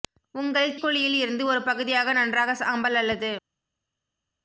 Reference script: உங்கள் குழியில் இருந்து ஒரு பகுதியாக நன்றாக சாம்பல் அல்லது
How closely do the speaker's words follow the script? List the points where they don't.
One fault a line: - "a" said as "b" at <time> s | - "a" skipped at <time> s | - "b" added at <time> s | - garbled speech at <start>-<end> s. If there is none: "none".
none